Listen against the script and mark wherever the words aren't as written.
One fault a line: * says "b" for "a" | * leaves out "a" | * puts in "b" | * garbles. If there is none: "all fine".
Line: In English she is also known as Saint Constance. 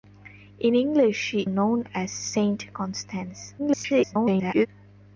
* leaves out "is also"
* garbles